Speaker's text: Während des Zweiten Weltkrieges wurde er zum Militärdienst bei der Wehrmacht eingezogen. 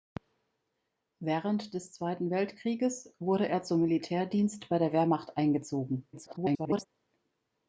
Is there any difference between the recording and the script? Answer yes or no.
yes